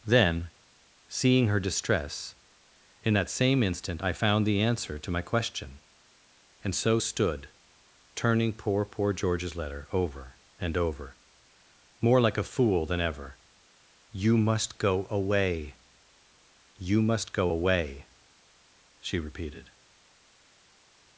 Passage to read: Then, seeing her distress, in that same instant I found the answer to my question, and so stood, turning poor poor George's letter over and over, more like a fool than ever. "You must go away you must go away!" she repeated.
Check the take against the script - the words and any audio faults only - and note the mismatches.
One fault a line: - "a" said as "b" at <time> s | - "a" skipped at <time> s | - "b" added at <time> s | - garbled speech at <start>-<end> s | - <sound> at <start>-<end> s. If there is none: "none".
none